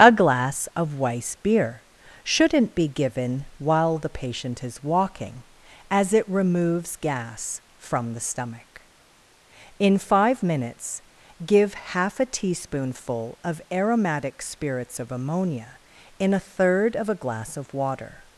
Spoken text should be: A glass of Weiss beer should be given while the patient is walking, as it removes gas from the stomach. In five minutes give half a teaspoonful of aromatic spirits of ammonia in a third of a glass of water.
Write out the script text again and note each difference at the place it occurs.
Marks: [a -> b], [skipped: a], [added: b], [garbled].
A glass of Weiss beer [should -> shouldn't] be given while the patient is walking, as it removes gas from the stomach. In five minutes give half a teaspoonful of aromatic spirits of ammonia in a third of a glass of water.